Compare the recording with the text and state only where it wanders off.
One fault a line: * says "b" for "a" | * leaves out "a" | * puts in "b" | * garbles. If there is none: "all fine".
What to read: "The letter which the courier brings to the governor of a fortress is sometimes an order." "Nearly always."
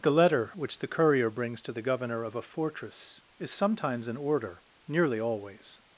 all fine